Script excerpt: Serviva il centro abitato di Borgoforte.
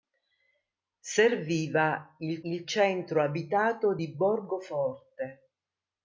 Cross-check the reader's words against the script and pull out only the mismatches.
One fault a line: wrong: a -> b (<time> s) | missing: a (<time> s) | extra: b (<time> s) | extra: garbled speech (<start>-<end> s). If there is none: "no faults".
extra: il (2.4 s)